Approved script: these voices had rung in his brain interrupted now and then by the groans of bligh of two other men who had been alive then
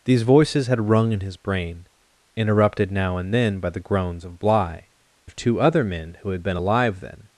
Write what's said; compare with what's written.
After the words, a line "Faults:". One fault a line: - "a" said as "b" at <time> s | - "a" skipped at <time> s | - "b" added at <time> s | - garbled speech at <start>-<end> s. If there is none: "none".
these voices had rung in his brain interrupted now and then by the groans of bligh of two other men who had been alive then
Faults:
none